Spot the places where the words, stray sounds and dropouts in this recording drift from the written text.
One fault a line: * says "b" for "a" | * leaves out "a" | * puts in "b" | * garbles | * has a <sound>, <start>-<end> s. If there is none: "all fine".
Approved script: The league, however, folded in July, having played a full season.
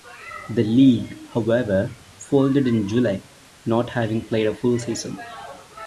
* puts in "not"